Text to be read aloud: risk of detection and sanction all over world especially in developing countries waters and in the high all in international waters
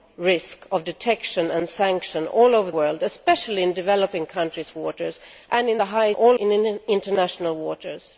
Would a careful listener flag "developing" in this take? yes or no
no